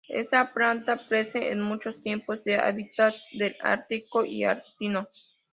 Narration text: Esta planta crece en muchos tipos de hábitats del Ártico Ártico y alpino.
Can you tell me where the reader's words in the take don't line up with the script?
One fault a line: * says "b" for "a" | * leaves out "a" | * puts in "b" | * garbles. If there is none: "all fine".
* leaves out "Ártico"